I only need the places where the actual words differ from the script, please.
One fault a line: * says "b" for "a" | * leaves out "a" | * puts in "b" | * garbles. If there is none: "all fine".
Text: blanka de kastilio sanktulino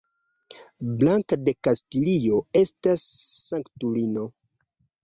* puts in "estas"